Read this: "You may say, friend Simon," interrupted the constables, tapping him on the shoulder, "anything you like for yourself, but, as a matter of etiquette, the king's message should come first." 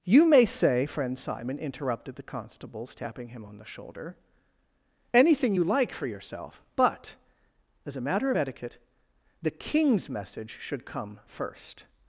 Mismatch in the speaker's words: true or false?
false